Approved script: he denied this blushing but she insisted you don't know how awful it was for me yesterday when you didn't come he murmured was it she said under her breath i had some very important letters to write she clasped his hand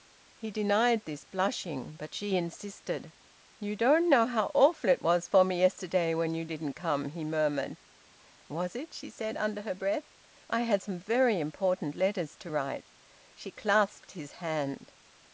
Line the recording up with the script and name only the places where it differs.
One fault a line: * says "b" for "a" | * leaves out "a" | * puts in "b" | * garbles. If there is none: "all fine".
all fine